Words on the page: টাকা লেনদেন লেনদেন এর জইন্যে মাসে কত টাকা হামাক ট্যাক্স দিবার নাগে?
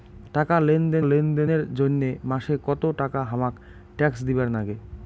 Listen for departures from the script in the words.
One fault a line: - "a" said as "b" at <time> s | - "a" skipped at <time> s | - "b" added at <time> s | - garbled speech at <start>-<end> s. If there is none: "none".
none